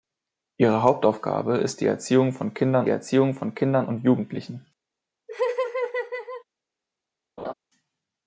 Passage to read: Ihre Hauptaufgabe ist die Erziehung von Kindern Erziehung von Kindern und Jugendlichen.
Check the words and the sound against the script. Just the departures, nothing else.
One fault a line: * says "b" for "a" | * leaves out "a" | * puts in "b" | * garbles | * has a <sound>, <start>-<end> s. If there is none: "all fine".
* has a laugh, 5.3-6.4 s
* has a laugh, 7.4-7.5 s